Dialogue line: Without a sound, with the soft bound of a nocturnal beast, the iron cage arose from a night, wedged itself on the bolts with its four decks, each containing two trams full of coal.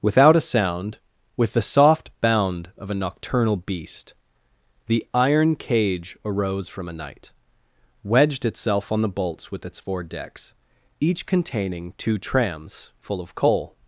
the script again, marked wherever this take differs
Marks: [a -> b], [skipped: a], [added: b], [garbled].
Without a sound, with the soft bound of a nocturnal beast, the iron cage arose from a night, wedged itself on the bolts with its four decks, each containing two trams full of coal.